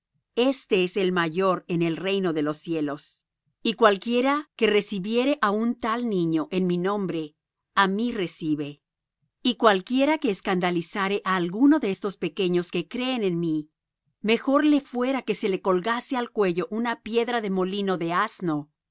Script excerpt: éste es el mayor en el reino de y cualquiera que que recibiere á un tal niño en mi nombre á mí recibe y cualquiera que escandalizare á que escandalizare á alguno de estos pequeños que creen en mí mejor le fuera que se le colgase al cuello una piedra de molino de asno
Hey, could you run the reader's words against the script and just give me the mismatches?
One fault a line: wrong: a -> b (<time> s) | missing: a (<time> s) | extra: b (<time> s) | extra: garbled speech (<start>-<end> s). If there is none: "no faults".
extra: los cielos (2.4 s)
missing: que (4.7 s)
missing: que escandalizare á (11.3 s)